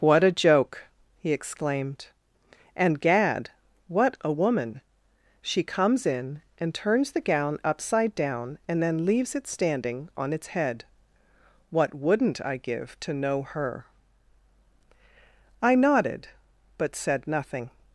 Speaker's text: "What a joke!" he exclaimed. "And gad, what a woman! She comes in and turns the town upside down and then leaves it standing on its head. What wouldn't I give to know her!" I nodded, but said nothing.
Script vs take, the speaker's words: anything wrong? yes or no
yes